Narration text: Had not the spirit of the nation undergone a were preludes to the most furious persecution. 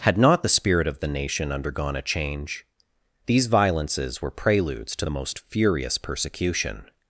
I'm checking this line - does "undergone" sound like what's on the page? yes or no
yes